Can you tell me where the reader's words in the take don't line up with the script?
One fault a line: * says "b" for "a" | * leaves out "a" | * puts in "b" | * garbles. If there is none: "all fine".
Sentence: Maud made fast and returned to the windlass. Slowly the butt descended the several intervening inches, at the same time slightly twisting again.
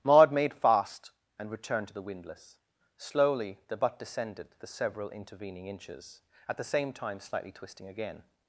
all fine